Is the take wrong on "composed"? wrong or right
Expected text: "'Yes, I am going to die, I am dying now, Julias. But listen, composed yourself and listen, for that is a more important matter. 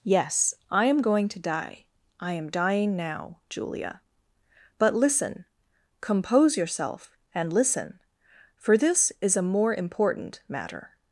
wrong